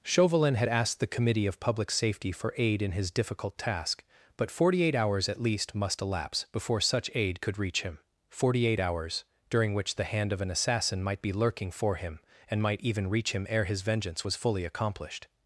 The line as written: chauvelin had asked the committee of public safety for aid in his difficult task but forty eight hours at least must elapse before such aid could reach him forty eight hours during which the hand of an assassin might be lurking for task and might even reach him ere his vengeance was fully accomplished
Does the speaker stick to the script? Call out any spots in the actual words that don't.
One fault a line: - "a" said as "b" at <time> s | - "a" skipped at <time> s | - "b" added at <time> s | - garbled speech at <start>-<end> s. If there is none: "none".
- "task" said as "him" at 11.9 s